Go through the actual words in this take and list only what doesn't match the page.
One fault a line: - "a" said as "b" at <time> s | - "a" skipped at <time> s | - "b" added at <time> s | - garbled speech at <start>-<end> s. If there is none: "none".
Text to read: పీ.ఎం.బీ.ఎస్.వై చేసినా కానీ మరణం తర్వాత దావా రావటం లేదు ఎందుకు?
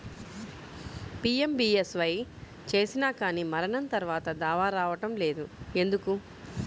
none